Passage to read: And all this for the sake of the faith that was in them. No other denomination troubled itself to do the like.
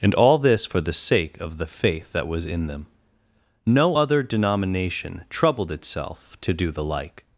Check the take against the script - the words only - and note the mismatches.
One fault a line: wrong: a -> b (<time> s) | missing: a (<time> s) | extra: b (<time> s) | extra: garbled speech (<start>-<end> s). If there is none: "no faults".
no faults